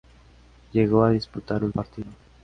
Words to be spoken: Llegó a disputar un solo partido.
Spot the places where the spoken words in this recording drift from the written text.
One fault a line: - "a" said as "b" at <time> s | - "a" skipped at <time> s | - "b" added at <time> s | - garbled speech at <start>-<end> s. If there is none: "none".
- "solo" skipped at 1.8 s